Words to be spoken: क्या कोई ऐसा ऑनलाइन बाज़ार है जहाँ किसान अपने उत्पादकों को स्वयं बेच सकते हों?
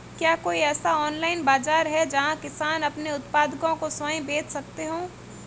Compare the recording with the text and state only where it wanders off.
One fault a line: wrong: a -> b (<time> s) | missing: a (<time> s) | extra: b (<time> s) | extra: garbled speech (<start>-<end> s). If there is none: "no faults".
no faults